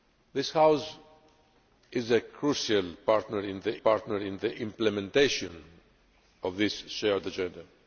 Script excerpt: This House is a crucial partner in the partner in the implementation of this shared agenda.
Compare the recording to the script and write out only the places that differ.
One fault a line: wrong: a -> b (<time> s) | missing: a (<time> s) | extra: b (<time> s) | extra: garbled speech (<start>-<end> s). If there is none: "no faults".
no faults